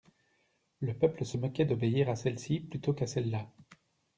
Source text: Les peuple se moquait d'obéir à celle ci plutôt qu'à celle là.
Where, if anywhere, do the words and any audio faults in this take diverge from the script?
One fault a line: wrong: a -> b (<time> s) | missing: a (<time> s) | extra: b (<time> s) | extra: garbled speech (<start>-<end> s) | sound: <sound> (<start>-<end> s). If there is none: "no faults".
wrong: Les -> Le (0.8 s)